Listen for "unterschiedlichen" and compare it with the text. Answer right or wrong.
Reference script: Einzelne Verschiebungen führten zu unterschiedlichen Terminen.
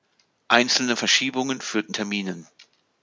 wrong